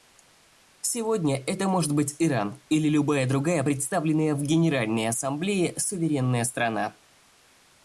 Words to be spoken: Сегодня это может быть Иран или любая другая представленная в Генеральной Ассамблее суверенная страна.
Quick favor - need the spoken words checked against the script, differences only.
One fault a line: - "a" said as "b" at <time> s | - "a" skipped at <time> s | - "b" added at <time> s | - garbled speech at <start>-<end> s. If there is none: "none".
none